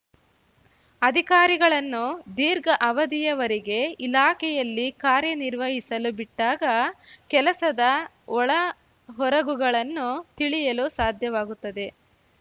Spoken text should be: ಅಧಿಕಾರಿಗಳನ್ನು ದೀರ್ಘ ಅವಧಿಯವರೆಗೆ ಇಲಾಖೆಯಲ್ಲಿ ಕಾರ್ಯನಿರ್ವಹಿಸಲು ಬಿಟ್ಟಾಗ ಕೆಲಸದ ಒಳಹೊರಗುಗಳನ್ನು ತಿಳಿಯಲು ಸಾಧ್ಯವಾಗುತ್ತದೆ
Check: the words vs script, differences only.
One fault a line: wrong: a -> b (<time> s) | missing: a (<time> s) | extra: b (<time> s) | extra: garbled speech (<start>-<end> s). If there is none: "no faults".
no faults